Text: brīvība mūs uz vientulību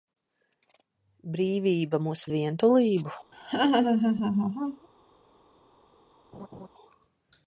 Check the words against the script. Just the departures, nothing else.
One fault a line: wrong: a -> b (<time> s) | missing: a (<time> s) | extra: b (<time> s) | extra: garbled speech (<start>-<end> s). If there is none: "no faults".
no faults